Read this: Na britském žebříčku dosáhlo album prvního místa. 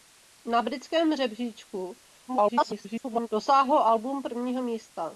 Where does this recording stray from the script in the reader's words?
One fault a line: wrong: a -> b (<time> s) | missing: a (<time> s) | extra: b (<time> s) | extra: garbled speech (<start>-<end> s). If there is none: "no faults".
extra: garbled speech (2.3-3.3 s)